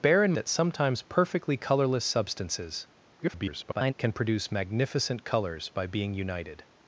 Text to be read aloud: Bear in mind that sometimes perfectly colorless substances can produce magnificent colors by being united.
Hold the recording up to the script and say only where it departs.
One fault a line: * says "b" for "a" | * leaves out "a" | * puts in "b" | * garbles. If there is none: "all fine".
* leaves out "mind"
* garbles